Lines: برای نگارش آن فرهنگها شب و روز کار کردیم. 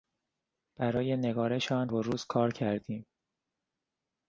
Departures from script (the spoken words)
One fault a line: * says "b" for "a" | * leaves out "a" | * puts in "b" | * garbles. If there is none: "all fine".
* leaves out "فرهنگها شب"